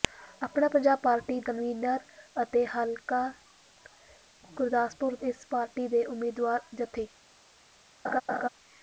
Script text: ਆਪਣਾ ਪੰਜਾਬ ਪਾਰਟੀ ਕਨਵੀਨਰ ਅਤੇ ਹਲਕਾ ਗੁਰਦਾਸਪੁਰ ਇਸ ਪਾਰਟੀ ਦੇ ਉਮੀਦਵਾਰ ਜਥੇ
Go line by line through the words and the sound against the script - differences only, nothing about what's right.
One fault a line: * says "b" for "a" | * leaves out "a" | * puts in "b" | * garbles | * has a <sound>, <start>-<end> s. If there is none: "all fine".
* has a laugh, 8.0-8.5 s